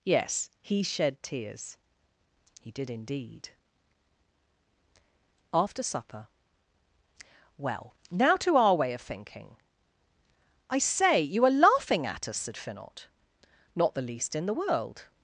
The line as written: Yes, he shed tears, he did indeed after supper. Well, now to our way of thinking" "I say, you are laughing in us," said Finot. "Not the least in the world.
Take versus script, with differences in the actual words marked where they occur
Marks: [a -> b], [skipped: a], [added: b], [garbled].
Yes, he shed tears, he did indeed after supper. Well, now to our way of thinking" "I say, you are laughing [in -> at] us," said Finot. "Not the least in the world.